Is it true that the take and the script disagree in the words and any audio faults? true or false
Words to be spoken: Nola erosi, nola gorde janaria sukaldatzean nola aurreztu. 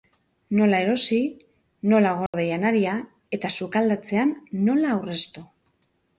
true